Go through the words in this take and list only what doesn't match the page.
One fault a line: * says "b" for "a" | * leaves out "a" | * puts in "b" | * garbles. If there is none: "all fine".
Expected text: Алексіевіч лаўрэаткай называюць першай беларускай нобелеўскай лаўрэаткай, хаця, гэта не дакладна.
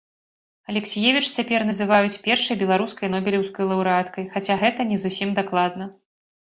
* says "цяпер" for "лаўрэаткай"
* puts in "зусім"